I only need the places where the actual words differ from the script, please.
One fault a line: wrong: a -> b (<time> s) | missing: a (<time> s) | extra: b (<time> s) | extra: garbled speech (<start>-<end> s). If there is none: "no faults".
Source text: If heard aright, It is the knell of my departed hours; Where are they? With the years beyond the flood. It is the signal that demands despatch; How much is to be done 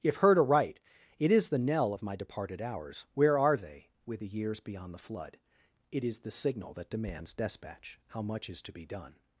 no faults